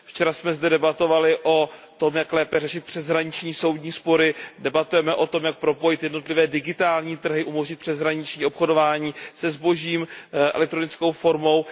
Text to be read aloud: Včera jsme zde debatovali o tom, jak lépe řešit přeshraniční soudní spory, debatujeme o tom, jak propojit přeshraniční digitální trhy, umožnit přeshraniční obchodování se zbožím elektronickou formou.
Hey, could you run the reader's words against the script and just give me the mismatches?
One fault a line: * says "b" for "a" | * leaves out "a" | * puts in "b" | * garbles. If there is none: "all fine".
* says "jednotlivé" for "přeshraniční"